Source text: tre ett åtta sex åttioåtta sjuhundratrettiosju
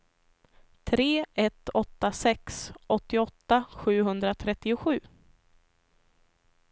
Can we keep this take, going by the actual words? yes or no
yes